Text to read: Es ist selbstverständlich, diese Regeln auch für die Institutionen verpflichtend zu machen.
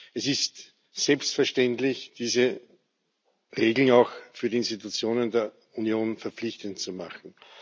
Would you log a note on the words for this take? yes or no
yes